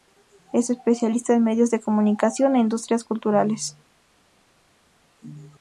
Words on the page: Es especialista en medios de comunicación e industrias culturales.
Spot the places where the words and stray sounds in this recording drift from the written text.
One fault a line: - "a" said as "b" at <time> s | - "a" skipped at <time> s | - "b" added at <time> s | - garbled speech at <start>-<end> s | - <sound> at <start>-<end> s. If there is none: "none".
none